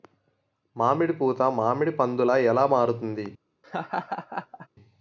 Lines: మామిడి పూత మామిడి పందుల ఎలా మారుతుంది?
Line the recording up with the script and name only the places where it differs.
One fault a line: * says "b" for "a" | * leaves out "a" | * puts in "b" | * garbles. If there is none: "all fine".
all fine